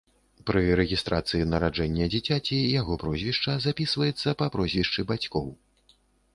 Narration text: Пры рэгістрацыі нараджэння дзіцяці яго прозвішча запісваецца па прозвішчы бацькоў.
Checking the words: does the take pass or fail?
pass